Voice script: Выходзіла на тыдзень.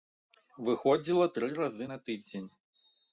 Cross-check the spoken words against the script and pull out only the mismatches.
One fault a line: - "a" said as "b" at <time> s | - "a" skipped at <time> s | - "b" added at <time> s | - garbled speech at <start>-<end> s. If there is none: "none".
- "тры разы" added at 1.4 s